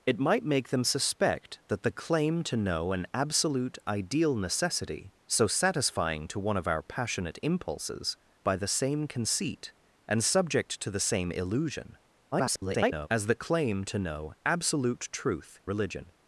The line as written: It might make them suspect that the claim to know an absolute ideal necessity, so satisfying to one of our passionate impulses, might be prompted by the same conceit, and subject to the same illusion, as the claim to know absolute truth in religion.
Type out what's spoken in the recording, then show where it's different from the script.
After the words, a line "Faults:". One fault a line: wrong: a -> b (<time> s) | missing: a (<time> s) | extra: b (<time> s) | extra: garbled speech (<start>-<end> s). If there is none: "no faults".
It might make them suspect that the claim to know an absolute ideal necessity, so satisfying to one of our passionate impulses, by the same conceit, and subject to the same illusion, [garbled] as the claim to know absolute truth religion.
Faults:
missing: might be prompted (8.2 s)
extra: garbled speech (12.3-13.1 s)
missing: in (15.6 s)